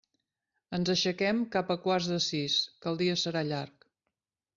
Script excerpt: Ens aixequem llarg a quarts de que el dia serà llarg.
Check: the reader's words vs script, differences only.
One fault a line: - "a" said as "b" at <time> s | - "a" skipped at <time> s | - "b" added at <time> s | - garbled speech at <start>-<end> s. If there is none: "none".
- "llarg" said as "cap" at 1.6 s
- "sis" added at 2.3 s